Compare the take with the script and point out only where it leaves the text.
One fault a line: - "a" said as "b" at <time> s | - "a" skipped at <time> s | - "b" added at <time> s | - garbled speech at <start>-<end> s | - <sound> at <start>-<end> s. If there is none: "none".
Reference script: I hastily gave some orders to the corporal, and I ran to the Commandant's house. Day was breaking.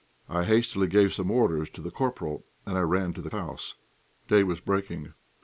- "Commandant's" skipped at 3.3 s